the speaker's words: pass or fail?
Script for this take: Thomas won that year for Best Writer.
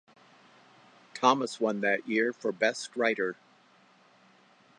pass